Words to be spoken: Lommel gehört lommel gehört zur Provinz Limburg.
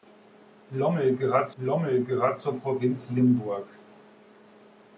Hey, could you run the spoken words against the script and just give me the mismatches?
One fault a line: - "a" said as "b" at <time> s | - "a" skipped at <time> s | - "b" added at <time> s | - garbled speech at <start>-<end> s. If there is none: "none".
none